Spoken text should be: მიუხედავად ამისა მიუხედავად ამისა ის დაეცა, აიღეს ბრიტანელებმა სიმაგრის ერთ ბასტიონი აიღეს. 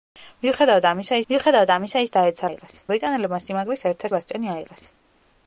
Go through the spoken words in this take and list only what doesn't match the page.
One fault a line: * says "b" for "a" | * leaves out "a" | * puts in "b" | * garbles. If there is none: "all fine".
all fine